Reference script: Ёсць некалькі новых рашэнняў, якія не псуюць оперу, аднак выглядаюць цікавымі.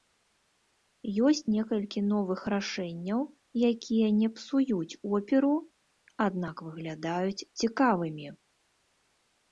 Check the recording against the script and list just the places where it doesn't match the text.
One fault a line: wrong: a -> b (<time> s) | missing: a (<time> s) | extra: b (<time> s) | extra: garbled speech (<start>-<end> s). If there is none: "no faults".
no faults